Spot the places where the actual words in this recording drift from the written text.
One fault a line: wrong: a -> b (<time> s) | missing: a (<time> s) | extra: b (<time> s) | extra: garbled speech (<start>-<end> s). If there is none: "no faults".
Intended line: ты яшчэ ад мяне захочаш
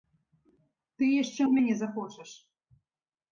no faults